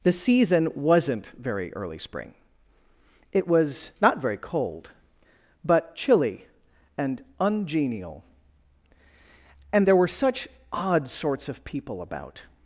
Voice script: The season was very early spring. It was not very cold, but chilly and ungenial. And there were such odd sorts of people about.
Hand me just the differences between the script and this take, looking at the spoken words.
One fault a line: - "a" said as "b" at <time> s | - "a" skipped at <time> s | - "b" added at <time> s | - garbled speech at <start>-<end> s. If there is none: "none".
- "was" said as "wasn't" at 0.7 s